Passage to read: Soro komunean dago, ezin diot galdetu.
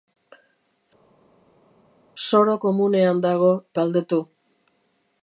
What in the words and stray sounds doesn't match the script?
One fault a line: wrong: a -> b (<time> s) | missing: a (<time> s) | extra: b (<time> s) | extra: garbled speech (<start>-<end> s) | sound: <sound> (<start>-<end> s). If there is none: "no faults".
missing: ezin diot (3.5 s)